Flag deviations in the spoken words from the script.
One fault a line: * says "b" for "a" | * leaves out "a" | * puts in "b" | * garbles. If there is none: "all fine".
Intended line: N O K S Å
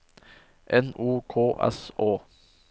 all fine